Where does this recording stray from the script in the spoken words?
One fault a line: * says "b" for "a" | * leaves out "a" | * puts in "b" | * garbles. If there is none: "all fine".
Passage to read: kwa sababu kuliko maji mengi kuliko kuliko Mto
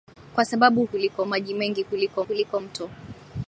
all fine